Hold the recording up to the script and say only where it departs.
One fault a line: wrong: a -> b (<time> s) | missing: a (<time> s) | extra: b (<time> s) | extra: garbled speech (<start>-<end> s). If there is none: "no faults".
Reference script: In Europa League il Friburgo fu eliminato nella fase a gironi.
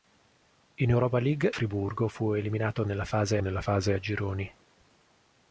missing: il (1.5 s)
extra: nella fase (3.4 s)